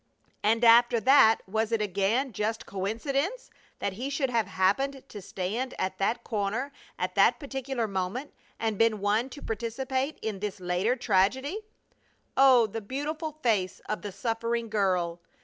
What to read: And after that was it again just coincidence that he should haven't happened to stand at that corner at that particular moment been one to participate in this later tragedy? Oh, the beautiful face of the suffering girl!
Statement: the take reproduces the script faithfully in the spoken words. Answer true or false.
false